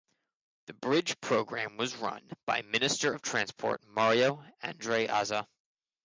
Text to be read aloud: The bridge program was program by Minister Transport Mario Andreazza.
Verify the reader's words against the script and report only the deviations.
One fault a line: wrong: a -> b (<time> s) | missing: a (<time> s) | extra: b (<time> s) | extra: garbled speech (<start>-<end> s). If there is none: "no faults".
wrong: program -> run (1.9 s)
extra: of (3.1 s)